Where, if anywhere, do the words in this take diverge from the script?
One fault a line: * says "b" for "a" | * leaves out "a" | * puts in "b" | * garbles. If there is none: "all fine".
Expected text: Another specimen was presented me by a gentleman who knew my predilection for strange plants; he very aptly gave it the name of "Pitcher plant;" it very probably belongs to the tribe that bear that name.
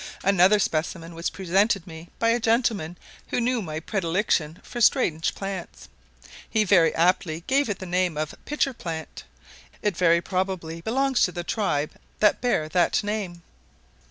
all fine